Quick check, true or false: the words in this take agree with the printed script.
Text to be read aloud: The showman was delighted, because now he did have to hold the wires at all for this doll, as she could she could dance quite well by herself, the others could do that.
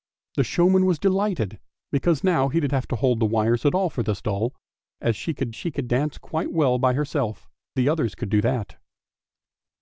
true